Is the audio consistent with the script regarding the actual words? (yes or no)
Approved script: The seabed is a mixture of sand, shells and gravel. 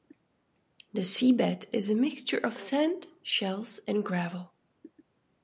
yes